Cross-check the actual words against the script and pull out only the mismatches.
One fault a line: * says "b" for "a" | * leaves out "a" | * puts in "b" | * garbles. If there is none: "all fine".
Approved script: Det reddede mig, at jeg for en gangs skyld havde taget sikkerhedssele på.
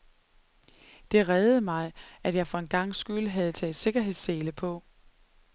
all fine